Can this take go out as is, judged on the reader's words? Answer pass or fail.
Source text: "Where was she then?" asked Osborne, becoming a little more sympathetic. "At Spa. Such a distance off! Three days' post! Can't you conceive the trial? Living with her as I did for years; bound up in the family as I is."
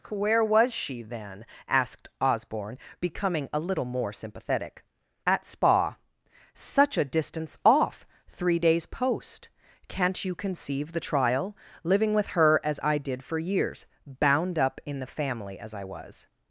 fail